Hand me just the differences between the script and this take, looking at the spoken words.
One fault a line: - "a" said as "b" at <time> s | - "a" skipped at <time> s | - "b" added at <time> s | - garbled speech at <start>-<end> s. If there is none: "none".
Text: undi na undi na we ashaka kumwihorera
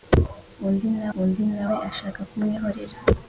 none